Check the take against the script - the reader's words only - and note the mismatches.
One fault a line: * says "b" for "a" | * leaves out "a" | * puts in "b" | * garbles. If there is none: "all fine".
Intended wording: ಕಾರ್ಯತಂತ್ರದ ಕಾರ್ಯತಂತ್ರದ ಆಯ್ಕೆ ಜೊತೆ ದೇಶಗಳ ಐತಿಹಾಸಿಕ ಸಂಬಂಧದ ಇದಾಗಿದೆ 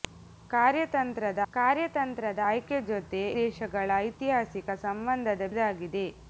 all fine